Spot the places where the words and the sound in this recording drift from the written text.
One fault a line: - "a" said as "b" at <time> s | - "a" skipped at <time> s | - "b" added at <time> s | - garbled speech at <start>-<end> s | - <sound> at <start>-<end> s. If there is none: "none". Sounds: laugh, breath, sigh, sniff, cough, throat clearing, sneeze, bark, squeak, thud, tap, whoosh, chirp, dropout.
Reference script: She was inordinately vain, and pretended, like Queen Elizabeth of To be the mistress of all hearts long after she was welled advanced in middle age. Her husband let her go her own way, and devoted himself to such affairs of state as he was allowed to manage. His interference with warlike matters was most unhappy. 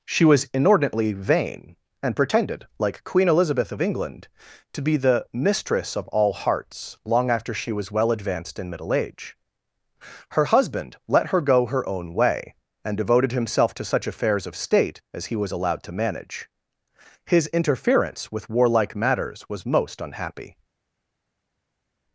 - "England" added at 3.8 s
- "welled" said as "well" at 7.9 s